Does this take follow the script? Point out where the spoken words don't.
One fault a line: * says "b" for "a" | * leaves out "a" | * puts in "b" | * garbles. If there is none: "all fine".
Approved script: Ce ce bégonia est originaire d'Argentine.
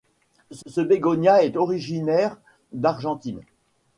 all fine